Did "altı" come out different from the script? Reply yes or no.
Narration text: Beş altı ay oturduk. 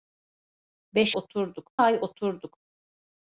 yes